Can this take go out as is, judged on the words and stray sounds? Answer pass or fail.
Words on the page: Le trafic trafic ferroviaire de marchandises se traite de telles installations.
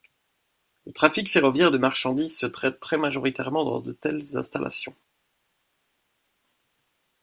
fail